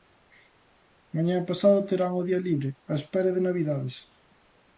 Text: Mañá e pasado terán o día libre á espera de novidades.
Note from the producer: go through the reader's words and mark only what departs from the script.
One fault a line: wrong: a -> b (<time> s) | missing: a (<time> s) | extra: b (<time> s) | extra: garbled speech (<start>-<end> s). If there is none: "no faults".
no faults